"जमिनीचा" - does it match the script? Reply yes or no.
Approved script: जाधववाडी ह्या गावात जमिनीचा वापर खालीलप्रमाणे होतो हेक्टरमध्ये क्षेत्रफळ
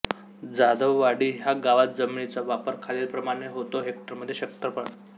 yes